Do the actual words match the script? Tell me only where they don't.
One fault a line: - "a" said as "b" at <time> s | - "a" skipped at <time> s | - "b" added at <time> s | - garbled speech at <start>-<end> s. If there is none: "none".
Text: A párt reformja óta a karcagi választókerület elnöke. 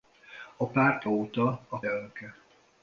- "reformja" skipped at 1.0 s
- "karcagi választókerület" skipped at 1.8 s